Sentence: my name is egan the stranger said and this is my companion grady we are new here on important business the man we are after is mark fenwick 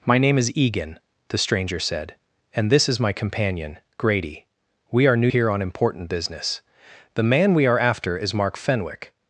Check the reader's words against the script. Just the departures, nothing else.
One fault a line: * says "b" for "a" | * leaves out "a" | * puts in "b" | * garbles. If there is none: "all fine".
all fine